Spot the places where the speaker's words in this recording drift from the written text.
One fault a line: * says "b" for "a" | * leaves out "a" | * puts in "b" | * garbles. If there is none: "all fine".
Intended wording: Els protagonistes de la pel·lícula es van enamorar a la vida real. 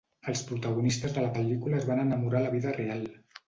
all fine